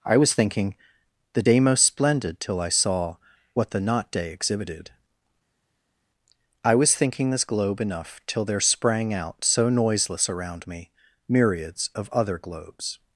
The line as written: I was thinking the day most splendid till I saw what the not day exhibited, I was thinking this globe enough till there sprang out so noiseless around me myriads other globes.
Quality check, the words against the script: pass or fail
fail